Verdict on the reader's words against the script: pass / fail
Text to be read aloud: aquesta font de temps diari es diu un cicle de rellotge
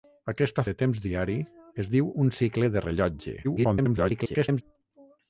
fail